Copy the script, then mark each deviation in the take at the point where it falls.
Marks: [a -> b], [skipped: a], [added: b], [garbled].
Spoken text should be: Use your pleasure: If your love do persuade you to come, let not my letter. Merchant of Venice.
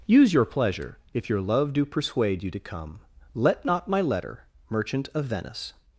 Use your pleasure: If your love do persuade you to come, let not my letter. Merchant of Venice.